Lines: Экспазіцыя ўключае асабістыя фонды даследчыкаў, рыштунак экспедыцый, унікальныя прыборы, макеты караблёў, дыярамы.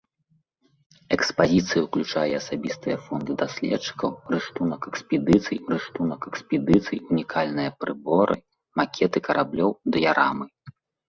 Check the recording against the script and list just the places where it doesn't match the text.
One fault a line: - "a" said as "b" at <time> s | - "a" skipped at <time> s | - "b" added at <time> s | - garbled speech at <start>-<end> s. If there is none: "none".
- "рыштунак экспедыцый" added at 5.7 s